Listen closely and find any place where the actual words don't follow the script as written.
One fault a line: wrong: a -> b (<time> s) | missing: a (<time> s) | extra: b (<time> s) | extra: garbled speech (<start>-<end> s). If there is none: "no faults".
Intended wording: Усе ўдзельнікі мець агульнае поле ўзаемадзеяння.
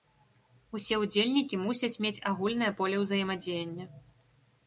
extra: мусяць (1.6 s)